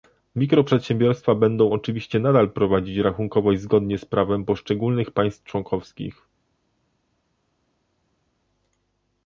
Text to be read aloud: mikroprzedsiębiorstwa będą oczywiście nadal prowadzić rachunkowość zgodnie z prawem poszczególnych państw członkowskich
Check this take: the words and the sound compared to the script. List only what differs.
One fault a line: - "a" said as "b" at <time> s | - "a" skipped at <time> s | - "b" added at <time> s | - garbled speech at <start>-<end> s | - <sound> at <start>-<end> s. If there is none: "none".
none